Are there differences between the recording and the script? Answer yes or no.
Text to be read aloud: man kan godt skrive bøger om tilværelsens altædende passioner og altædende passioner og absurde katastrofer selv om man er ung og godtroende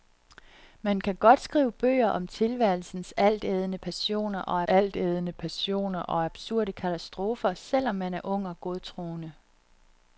no